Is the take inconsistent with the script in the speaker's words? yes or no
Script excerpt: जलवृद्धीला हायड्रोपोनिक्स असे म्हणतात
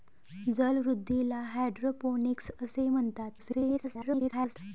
yes